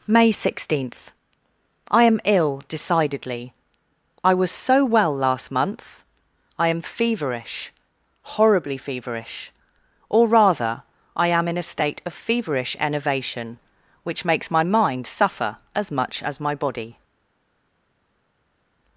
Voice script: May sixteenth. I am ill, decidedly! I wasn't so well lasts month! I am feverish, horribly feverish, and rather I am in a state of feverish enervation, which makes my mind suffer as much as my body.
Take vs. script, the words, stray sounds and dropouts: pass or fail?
fail